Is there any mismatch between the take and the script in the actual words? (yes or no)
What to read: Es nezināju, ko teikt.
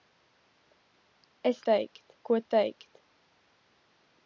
yes